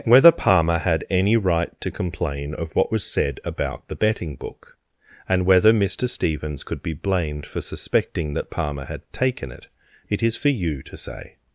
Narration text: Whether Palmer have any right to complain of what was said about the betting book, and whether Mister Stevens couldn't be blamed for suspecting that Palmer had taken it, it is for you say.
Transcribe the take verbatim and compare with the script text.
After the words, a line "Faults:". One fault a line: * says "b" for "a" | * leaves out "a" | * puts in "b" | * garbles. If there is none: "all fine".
Whether Palmer had any right to complain of what was said about the betting book, and whether Mister Stevens could be blamed for suspecting that Palmer had taken it, it is for you to say.
Faults:
* says "had" for "have"
* says "could" for "couldn't"
* puts in "to"